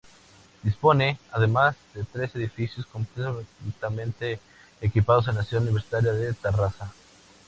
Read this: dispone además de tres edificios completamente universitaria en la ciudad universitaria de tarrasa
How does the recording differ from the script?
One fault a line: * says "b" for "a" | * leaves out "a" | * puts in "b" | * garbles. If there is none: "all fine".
* says "equipados" for "universitaria"